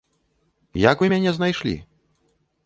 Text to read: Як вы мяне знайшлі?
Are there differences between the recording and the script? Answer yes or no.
no